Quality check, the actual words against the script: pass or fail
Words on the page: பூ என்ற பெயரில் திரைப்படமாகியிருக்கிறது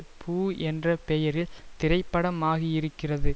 pass